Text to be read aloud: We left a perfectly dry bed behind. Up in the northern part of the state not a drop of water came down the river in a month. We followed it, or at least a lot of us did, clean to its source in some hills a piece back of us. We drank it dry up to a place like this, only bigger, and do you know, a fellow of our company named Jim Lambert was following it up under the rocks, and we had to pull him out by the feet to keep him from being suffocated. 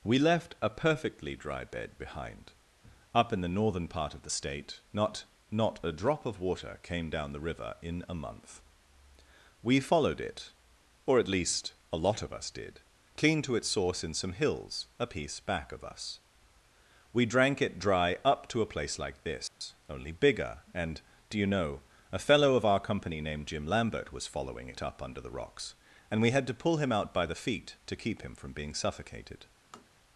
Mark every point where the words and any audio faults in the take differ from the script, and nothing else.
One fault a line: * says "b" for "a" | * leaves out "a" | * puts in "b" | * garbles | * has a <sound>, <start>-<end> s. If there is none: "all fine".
* puts in "not"
* has a dropout, 19.5-19.6 s
* has a tap, 29.7-29.9 s